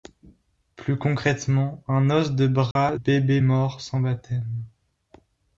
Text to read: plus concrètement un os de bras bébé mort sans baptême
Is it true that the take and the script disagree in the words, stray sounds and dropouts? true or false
true